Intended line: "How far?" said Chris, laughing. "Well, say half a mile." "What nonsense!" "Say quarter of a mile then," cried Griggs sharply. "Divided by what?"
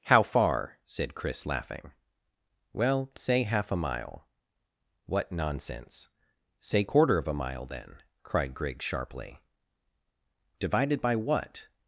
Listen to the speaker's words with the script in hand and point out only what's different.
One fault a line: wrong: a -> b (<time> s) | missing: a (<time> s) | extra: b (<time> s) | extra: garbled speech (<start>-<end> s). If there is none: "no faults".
no faults